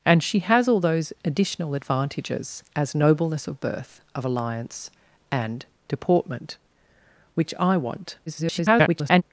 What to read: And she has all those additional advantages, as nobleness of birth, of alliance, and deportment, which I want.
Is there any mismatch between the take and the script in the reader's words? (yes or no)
yes